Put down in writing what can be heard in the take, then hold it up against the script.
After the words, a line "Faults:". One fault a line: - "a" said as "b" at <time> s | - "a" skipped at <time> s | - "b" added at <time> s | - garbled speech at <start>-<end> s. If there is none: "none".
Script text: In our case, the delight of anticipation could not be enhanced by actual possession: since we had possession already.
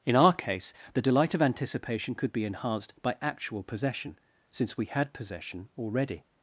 In our case, the delight of anticipation could be enhanced by actual possession: since we had possession already.
Faults:
- "not" skipped at 2.3 s